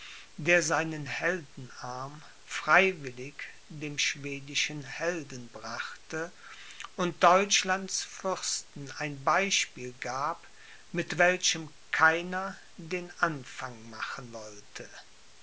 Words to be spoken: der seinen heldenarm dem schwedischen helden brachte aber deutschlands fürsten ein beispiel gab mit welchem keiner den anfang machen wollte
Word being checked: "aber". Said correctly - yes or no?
no